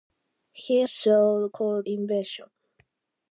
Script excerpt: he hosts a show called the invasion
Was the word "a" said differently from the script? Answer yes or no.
yes